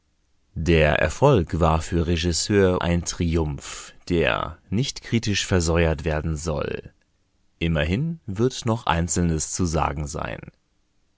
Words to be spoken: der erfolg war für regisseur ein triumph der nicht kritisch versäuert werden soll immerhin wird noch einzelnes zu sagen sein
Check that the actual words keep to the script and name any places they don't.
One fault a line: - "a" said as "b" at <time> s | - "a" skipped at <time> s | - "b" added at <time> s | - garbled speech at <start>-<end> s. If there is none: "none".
none